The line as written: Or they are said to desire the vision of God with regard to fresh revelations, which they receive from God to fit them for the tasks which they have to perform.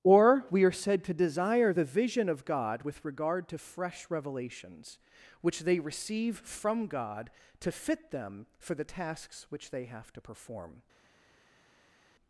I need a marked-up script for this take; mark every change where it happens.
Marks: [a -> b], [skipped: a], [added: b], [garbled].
Or [they -> we] are said to desire the vision of God with regard to fresh revelations, which they receive from God to fit them for the tasks which they have to perform.